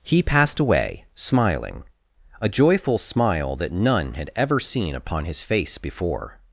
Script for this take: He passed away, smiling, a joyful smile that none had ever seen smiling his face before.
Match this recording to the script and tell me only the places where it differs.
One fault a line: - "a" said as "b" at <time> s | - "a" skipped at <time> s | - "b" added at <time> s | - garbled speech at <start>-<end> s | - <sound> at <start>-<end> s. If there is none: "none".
- "smiling" said as "upon" at 5.0 s